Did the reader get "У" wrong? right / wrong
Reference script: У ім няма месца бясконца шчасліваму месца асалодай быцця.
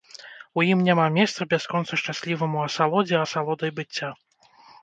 right